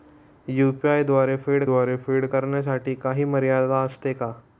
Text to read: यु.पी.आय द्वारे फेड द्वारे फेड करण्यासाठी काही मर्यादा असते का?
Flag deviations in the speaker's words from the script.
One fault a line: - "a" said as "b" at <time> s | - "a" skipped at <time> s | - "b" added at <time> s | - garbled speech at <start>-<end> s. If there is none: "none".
none